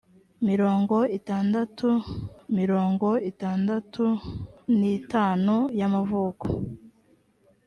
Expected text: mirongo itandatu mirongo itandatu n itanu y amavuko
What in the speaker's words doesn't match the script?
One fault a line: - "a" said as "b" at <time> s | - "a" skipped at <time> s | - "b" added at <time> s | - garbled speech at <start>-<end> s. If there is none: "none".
none